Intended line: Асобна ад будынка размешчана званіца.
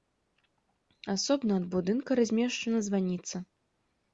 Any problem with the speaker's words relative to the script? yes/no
no